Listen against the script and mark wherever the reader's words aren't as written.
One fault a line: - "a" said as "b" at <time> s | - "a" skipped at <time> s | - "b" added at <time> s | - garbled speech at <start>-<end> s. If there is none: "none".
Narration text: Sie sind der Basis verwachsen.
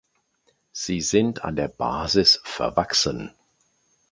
- "an" added at 1.4 s